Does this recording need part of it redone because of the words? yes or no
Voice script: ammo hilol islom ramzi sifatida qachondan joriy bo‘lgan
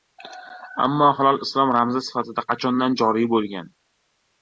no